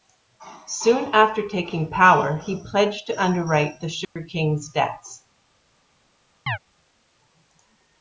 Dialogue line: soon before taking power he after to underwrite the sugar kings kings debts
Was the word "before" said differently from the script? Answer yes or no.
yes